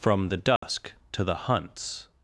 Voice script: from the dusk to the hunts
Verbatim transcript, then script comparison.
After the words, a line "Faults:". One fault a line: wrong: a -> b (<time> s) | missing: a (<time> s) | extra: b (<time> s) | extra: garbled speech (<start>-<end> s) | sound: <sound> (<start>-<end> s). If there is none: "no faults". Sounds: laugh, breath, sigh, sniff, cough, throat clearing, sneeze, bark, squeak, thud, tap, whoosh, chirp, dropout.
from the dusk to the hunts
Faults:
sound: dropout (0.6-0.6 s)